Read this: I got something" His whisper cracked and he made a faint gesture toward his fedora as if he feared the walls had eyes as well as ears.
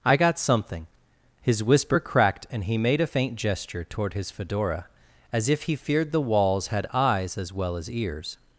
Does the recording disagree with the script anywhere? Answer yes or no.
no